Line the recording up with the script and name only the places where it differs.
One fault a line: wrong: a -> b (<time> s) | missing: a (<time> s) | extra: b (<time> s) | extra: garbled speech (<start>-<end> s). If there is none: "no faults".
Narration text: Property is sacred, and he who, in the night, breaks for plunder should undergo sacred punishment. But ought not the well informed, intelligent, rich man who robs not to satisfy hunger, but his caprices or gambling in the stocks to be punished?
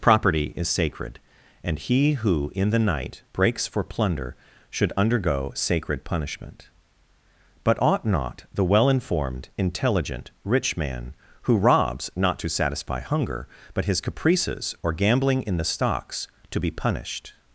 no faults